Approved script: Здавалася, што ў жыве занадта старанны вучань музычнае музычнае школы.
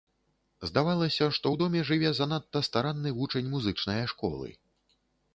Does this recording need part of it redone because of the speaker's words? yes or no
yes